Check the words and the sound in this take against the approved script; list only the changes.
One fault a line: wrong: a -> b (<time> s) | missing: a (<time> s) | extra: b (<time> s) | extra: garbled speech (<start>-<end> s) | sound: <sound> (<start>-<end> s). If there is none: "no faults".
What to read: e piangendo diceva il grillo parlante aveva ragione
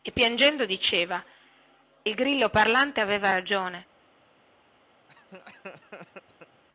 sound: laugh (5.1-6.6 s)